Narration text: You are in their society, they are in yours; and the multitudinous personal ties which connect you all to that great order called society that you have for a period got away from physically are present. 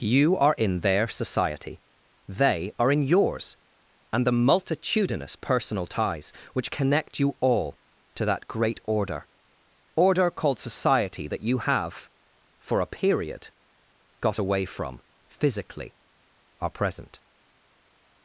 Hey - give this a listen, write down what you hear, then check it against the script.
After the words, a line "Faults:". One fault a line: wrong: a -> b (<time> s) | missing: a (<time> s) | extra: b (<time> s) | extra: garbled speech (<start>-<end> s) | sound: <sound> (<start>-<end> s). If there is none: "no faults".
You are in their society, they are in yours; and the multitudinous personal ties which connect you all to that great order order called society that you have for a period got away from physically are present.
Faults:
extra: order (9.9 s)